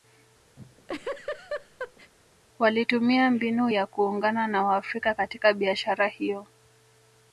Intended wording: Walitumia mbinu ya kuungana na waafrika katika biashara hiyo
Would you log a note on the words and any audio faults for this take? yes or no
yes